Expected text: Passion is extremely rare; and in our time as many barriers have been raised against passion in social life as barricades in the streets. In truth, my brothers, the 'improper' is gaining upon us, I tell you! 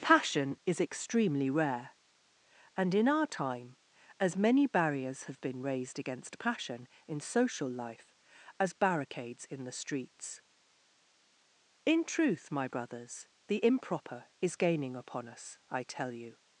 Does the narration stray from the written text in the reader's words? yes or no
no